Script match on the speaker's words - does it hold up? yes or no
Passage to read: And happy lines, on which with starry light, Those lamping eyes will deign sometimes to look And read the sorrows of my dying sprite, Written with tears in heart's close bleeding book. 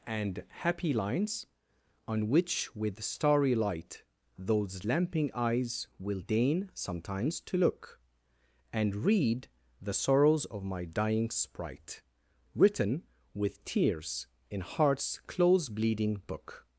yes